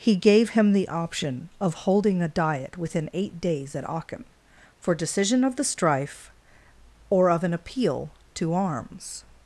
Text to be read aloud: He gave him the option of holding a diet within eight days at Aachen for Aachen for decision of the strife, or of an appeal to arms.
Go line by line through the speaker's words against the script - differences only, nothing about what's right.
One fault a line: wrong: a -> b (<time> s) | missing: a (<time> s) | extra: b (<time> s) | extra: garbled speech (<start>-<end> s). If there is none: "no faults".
missing: Aachen for (5.0 s)